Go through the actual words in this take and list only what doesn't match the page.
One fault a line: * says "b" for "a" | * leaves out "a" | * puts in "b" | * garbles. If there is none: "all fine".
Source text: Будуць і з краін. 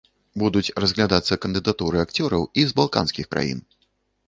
* puts in "разглядацца кандыдатуры акцёраў"
* puts in "балканскіх"